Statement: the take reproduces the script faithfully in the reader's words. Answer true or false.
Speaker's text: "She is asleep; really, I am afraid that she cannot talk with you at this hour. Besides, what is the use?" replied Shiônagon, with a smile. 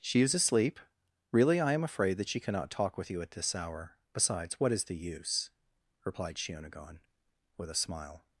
true